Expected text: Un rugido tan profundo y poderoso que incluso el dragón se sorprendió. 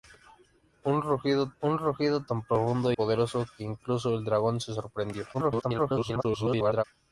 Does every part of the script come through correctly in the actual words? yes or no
no